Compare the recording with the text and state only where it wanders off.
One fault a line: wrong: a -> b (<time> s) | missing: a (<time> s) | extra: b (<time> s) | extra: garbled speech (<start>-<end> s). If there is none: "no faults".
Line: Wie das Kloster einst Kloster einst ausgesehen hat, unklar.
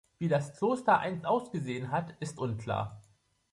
missing: Kloster einst (1.2 s)
extra: ist (2.2 s)